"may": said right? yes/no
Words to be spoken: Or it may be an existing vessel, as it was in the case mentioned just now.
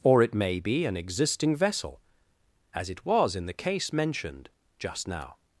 yes